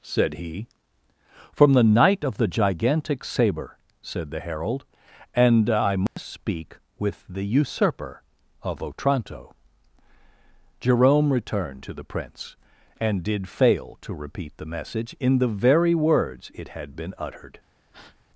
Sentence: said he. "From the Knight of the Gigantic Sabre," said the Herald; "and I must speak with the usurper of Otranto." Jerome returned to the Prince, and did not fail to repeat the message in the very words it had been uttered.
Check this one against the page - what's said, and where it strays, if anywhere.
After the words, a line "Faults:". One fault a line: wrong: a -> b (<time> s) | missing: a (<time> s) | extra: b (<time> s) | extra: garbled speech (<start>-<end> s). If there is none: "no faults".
said he. "From the Knight of the Gigantic Sabre," said the Herald; "and I must speak with the usurper of Otranto." Jerome returned to the Prince, and did fail to repeat the message in the very words it had been uttered.
Faults:
missing: not (13.5 s)